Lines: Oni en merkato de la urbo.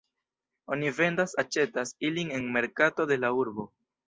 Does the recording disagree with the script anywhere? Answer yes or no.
yes